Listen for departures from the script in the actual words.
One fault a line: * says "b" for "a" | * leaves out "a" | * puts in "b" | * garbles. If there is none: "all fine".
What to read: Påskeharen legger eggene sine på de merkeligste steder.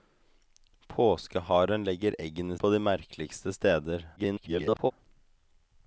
* leaves out "sine"
* garbles